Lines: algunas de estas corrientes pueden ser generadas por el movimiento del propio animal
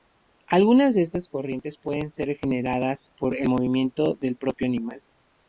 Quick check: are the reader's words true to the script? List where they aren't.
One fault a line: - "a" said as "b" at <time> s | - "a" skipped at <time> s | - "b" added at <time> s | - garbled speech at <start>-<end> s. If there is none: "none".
none